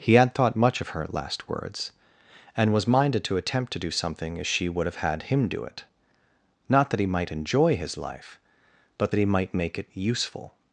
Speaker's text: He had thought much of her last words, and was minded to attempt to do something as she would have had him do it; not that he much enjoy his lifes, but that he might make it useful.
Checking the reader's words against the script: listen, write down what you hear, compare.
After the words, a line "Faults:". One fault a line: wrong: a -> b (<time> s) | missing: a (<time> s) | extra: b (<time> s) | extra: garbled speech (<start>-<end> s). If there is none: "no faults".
He had thought much of her last words, and was minded to attempt to do something as she would have had him do it; not that he might enjoy his life, but that he might make it useful.
Faults:
wrong: much -> might (7.0 s)
wrong: lifes -> life (8.0 s)